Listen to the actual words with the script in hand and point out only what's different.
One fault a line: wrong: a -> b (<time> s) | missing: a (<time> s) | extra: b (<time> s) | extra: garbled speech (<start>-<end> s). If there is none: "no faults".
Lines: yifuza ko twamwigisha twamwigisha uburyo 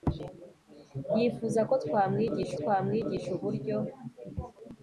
no faults